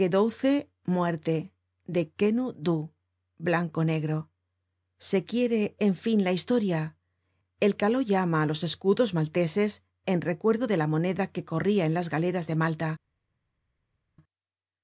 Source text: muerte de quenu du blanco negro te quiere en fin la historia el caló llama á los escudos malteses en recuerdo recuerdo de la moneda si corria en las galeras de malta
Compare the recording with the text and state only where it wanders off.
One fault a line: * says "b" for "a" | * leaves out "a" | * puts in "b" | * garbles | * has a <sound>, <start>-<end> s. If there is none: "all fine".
* says "se" for "te"
* leaves out "recuerdo"
* says "que" for "si"